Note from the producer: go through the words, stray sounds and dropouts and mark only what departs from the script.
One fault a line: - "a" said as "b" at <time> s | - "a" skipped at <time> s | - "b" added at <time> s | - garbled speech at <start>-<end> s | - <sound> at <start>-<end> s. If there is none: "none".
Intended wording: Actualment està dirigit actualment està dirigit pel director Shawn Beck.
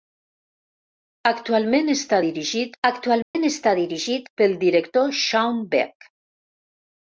- dropout at 3.2-3.3 s